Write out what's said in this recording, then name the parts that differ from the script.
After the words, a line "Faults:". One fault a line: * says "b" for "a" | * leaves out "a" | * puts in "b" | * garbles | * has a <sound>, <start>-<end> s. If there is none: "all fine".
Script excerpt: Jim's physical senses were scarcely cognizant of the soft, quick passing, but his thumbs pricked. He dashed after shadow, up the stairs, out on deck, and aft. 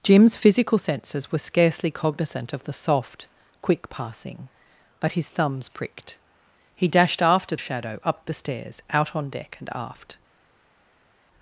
Jim's physical senses were scarcely cognizant of the soft, quick passing, but his thumbs pricked. He dashed after shadow, up the stairs, out on deck, and aft.
Faults:
all fine